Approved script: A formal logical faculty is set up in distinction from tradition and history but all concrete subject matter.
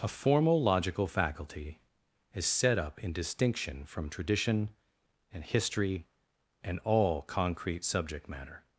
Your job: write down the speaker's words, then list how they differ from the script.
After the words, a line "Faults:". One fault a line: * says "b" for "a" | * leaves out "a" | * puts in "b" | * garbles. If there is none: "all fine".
A formal logical faculty is set up in distinction from tradition and history and all concrete subject matter.
Faults:
* says "and" for "but"